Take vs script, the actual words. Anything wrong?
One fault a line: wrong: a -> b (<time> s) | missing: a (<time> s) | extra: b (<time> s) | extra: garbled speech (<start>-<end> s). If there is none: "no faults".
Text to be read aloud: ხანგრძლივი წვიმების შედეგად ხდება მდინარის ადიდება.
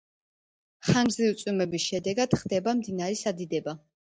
no faults